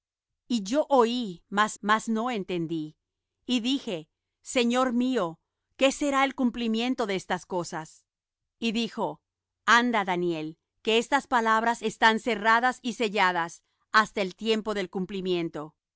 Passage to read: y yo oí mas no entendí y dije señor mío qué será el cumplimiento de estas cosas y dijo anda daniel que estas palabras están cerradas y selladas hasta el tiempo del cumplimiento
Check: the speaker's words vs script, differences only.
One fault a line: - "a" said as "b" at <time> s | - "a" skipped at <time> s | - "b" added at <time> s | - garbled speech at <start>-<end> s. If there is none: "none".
- "mas" added at 1.8 s